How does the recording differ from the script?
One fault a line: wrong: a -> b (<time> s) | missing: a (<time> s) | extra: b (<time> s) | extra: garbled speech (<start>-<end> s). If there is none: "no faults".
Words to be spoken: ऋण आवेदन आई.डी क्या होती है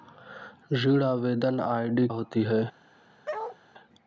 missing: क्या (2.1 s)